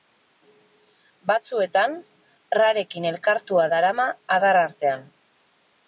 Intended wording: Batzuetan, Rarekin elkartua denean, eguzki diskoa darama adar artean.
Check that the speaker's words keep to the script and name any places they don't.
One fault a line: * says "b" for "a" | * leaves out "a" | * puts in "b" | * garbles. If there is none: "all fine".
* leaves out "denean eguzki diskoa"